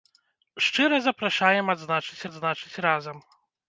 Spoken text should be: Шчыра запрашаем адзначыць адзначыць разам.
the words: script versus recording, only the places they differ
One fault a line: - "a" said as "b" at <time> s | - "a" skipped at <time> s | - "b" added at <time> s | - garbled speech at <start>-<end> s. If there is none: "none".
none